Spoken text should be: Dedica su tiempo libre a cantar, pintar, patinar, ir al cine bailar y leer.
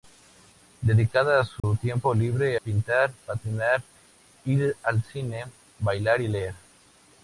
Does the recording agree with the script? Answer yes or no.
no